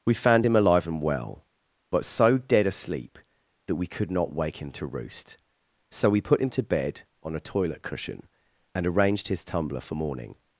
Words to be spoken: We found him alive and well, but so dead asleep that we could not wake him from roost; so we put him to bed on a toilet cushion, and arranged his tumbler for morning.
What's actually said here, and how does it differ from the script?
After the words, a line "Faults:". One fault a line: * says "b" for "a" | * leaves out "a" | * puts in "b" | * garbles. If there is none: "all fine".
We found him alive and well, but so dead asleep that we could not wake him to roost; so we put him to bed on a toilet cushion, and arranged his tumbler for morning.
Faults:
* says "to" for "from"